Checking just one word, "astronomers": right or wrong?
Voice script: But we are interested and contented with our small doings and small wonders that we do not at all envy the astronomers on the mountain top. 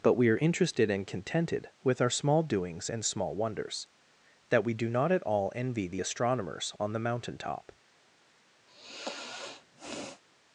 right